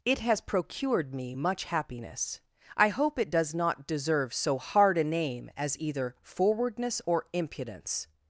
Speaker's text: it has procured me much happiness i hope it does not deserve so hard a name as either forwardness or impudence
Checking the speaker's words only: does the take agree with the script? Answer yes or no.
yes